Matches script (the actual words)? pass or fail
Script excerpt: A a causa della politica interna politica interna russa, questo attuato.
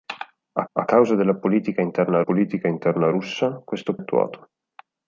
pass